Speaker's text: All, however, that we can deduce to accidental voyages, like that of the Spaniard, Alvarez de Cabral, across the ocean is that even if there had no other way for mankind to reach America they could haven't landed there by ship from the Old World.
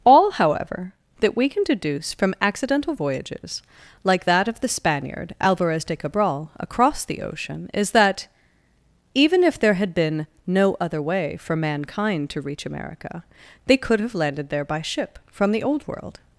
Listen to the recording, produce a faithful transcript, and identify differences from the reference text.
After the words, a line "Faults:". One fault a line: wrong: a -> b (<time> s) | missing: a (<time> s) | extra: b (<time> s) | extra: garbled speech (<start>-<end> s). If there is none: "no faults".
All, however, that we can deduce from accidental voyages, like that of the Spaniard, Alvarez de Cabral, across the ocean is that even if there had been no other way for mankind to reach America they could have landed there by ship from the Old World.
Faults:
wrong: to -> from (2.1 s)
extra: been (9.9 s)
wrong: haven't -> have (14.0 s)